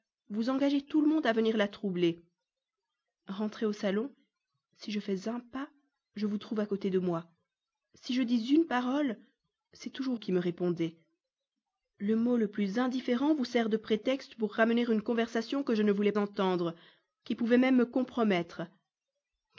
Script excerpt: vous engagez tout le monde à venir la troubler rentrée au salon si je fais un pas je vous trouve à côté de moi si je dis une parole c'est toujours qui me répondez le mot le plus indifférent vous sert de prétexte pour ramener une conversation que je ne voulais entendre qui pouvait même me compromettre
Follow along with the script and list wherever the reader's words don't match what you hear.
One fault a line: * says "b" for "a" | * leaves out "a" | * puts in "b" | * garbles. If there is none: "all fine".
all fine